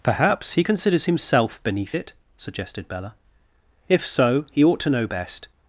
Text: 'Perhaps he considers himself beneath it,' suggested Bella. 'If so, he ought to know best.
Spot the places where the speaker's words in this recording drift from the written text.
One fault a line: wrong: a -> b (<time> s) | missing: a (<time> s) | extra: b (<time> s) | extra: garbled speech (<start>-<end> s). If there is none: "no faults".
no faults